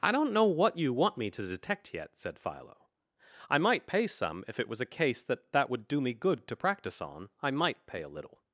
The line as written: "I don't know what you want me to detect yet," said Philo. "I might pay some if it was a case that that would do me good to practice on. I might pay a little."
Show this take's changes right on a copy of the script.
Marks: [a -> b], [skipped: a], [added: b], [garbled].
"I don't know what you want me to detect yet," said Philo. "I might pay some if it was a case that that would do me good to practice on. I might pay a little."